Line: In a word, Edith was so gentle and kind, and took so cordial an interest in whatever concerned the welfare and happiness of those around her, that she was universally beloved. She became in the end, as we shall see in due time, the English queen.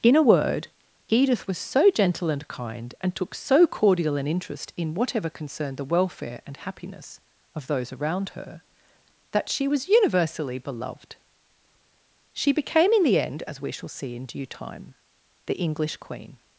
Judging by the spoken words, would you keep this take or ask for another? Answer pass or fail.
pass